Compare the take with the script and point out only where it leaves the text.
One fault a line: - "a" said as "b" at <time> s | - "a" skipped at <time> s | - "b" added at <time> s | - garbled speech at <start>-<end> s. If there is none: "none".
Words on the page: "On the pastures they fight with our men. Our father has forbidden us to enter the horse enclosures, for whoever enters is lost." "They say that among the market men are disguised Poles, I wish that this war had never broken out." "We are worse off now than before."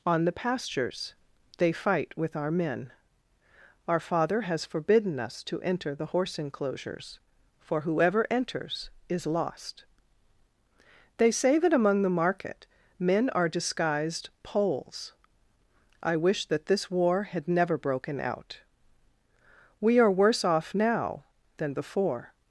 none